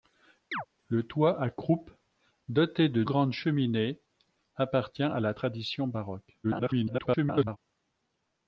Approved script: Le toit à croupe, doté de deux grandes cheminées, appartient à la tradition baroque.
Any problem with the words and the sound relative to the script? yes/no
yes